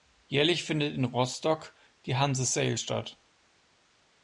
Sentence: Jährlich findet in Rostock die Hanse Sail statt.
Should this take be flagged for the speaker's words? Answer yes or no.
no